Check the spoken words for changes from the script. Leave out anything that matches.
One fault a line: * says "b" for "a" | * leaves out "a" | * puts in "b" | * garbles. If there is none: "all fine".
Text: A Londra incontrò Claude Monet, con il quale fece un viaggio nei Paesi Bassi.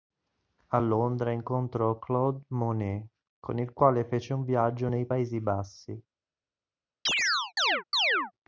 all fine